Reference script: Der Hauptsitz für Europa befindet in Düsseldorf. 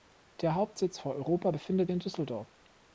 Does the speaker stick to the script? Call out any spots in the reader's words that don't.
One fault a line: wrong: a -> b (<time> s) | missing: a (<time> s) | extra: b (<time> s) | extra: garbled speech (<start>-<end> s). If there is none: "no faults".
no faults